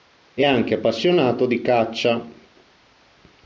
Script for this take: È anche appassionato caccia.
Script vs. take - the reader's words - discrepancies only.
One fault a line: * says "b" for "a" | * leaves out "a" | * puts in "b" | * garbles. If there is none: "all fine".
* puts in "di"